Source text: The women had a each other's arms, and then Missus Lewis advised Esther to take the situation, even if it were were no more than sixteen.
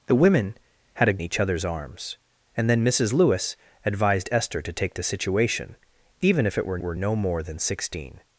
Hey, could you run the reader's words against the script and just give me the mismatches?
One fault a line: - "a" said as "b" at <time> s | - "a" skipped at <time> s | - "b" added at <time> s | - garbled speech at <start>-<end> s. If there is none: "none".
none